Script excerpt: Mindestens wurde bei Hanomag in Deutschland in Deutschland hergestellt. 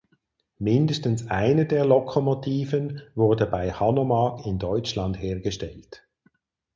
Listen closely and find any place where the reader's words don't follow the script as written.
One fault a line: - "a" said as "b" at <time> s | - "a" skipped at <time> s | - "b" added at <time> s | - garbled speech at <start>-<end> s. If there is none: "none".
- "eine der Lokomotiven" added at 1.3 s
- "in Deutschland" skipped at 5.2 s